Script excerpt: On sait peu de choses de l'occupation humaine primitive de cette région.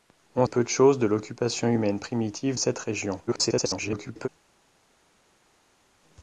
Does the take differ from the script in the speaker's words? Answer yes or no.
yes